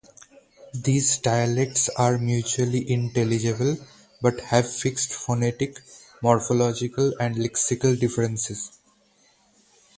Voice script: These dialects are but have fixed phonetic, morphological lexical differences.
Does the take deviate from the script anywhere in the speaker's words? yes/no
yes